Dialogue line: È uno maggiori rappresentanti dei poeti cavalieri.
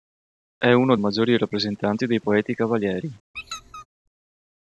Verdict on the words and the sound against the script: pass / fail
fail